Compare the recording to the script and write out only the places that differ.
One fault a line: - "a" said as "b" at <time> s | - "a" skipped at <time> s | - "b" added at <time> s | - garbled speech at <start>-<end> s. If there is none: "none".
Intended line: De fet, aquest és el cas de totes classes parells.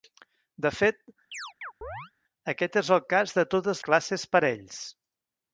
none